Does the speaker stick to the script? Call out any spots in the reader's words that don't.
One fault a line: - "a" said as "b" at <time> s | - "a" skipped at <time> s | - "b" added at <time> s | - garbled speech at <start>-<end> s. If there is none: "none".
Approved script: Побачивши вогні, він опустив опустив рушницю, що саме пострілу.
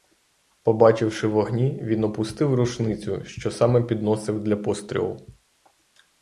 - "опустив" skipped at 2.5 s
- "підносив для" added at 3.8 s